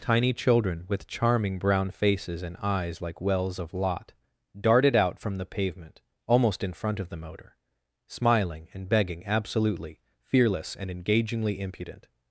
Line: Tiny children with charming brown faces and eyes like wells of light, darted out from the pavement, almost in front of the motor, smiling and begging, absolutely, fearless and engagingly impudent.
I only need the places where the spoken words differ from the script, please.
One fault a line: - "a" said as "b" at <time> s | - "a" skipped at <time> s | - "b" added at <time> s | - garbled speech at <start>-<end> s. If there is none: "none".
- "light" said as "lot" at 3.7 s